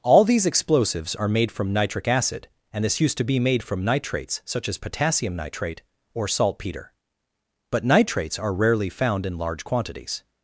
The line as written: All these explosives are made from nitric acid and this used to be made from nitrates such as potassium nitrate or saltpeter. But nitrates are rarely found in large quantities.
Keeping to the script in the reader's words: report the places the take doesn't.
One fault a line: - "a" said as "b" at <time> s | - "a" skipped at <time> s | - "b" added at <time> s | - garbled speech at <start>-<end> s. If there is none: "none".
none